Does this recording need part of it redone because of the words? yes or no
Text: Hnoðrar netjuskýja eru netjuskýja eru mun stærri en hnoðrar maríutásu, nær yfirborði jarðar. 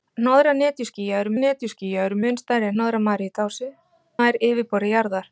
no